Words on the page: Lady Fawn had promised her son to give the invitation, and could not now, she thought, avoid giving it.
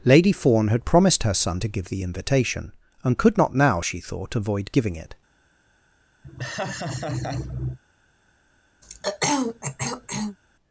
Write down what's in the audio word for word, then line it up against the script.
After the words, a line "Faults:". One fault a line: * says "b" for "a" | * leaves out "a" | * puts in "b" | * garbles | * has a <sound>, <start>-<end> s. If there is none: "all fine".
Lady Fawn had promised her son to give the invitation, and could not now, she thought, avoid giving it.
Faults:
* has a laugh, 6.2-7.8 s
* has a throat clearing, 8.8-10.4 s